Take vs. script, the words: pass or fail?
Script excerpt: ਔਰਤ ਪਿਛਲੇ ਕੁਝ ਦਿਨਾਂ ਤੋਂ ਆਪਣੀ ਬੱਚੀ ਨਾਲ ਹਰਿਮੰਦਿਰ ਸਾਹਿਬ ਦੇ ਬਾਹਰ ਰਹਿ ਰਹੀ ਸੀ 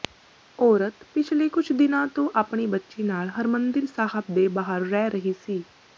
pass